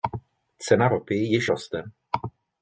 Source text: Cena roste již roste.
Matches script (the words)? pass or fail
fail